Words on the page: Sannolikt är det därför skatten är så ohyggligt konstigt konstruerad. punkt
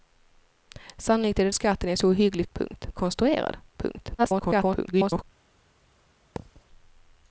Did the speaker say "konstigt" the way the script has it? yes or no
no